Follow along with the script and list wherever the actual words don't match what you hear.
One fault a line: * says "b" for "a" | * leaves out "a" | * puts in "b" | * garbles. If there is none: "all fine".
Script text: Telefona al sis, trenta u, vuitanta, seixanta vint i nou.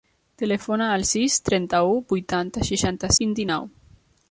all fine